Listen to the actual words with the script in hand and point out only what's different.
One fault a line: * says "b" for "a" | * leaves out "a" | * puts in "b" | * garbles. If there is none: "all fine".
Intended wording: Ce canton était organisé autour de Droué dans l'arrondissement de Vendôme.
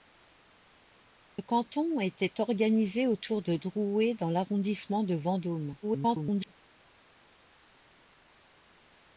* garbles